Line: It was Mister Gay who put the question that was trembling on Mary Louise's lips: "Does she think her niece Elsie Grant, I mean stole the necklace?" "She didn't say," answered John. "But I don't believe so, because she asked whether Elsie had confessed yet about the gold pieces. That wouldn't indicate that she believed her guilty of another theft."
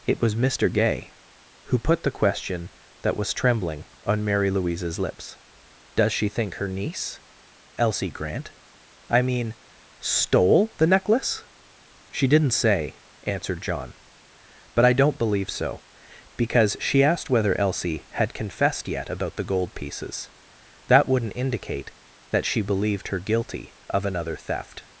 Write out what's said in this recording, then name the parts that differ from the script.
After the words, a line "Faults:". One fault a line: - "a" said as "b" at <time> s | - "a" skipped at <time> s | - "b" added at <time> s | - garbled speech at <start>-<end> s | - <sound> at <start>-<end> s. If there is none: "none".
It was Mister Gay who put the question that was trembling on Mary Louise's lips: "Does she think her niece Elsie Grant, I mean stole the necklace?" "She didn't say," answered John. "But I don't believe so, because she asked whether Elsie had confessed yet about the gold pieces. That wouldn't indicate that she believed her guilty of another theft."
Faults:
none